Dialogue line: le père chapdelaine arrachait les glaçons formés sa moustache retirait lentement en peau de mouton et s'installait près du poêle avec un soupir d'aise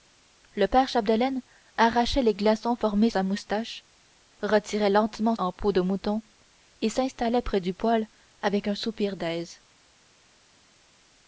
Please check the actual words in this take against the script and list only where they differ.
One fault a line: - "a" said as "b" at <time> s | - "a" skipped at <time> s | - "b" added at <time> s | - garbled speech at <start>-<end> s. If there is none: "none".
none